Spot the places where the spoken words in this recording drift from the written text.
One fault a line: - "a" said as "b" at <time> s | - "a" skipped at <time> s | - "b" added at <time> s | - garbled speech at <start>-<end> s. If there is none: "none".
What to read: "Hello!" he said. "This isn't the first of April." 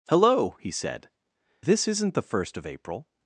none